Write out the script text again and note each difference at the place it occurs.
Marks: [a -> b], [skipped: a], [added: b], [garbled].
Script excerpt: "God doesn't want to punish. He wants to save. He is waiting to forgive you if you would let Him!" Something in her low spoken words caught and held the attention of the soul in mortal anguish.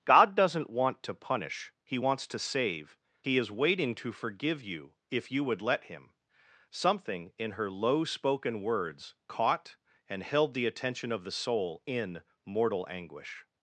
"God doesn't want to punish. He wants to save. He is waiting to forgive you if you would let Him!" Something in her low spoken words caught and held the attention of the soul in mortal anguish.